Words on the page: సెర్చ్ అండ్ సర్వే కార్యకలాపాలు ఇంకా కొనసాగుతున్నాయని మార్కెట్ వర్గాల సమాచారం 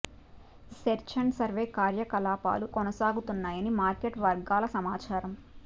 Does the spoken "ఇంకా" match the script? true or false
false